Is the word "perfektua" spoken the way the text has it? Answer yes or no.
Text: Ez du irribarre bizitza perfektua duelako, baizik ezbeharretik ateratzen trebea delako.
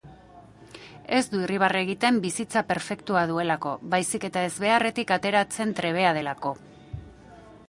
yes